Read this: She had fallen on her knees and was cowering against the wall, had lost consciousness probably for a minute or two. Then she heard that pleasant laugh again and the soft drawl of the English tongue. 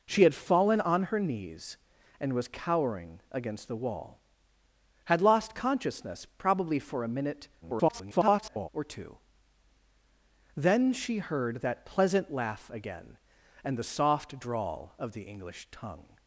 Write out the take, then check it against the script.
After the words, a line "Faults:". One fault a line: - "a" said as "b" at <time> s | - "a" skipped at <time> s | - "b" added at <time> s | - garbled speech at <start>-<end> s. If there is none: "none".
She had fallen on her knees and was cowering against the wall, had lost consciousness probably for a minute [garbled] or two. Then she heard that pleasant laugh again and the soft drawl of the English tongue.
Faults:
- garbled speech at 7.6-8.7 s